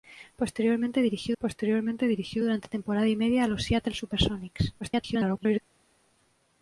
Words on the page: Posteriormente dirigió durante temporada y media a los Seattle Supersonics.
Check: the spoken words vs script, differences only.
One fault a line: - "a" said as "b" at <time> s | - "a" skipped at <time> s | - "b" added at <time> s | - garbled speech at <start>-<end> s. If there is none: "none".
- "posteriormente dirigió" added at 1.4 s
- garbled speech at 4.8-5.6 s